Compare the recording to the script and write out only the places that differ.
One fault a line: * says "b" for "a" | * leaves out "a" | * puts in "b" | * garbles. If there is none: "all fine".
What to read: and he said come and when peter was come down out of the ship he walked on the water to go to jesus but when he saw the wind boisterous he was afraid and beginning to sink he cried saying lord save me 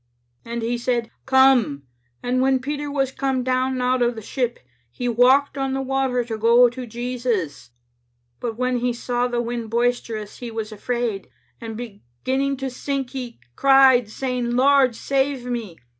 all fine